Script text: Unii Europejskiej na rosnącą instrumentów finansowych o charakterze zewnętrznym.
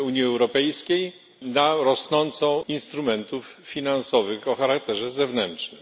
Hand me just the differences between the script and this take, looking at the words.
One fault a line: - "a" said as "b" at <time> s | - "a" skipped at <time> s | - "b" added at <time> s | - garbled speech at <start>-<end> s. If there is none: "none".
none